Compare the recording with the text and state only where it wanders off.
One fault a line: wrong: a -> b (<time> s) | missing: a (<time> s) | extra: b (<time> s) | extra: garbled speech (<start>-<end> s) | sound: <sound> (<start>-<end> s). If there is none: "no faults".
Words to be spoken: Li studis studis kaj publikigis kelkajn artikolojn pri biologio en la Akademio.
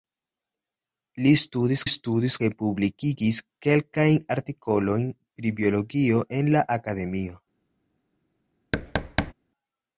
sound: thud (8.7-9.3 s)